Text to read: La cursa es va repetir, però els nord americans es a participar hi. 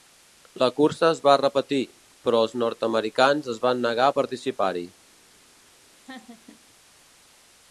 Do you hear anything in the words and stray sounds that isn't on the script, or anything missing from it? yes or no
yes